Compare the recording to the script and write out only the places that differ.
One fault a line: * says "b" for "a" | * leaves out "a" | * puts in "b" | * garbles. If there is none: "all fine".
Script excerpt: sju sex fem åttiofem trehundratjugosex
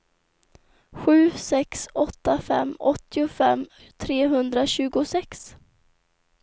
* puts in "åtta"